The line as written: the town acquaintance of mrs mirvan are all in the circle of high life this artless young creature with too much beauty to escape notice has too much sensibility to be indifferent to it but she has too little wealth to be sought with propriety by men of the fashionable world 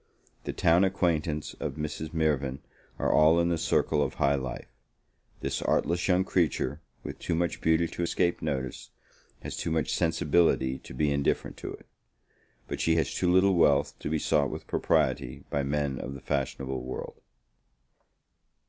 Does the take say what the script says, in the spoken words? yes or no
yes